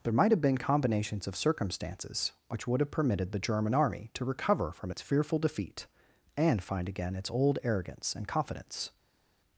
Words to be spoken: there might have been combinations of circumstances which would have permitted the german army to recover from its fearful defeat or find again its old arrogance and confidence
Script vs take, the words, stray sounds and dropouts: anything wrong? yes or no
yes